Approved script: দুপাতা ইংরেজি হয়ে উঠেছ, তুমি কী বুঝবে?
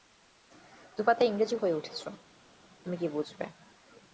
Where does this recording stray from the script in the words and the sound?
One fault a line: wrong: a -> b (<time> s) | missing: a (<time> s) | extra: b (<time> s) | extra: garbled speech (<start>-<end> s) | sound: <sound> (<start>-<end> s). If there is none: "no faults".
no faults